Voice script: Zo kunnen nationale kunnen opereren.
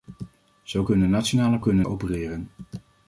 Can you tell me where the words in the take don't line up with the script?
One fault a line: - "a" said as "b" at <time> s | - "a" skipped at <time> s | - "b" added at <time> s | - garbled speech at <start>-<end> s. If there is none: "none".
none